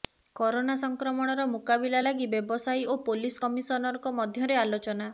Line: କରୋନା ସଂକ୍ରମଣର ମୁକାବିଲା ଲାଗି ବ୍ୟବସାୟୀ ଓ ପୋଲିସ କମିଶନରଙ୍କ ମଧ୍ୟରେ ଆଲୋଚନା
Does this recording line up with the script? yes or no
yes